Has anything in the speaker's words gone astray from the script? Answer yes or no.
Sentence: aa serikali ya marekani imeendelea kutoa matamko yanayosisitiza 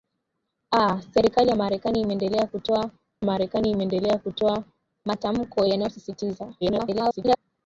yes